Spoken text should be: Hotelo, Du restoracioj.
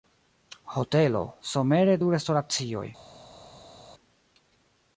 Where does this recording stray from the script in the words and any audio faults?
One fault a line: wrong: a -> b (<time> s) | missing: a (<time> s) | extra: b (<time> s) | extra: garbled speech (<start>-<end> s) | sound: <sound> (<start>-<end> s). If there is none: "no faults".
extra: Somere (1.5 s)